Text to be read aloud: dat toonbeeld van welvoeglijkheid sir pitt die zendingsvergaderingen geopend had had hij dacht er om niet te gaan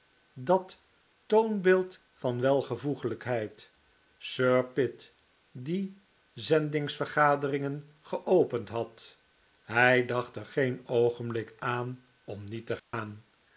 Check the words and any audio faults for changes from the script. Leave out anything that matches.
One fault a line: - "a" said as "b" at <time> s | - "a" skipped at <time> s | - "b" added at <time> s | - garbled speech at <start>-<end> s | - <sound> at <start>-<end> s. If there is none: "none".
- "had" skipped at 9.2 s
- "geen oogenblik aan" added at 10.4 s
- dropout at 12.8-12.9 s